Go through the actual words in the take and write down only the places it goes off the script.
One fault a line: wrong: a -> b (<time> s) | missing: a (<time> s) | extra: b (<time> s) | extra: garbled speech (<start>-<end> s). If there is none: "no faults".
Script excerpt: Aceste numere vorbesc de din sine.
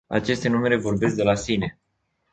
wrong: din -> la (1.2 s)